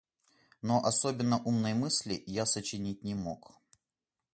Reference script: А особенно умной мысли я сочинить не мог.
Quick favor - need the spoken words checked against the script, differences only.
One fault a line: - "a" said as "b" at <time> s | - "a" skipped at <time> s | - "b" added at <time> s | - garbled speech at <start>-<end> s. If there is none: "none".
- "А" said as "Но" at 0.6 s